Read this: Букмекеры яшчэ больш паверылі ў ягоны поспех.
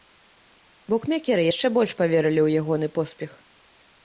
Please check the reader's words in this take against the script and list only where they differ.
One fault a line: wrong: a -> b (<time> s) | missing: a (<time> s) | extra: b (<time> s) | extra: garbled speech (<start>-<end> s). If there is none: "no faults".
no faults